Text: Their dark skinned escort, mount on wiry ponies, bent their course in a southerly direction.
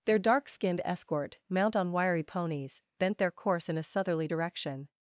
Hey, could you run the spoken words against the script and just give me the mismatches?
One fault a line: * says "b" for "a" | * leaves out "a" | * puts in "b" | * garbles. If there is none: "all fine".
all fine